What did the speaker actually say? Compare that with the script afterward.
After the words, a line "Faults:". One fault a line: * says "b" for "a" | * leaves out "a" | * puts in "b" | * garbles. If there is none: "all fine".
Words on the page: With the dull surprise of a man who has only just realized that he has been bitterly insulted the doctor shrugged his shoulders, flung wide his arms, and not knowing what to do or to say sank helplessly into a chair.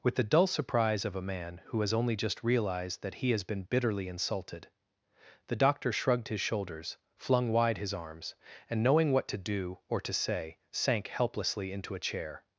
With the dull surprise of a man who has only just realized that he has been bitterly insulted the doctor shrugged his shoulders, flung wide his arms, and knowing what to do or to say sank helplessly into a chair.
Faults:
* leaves out "not"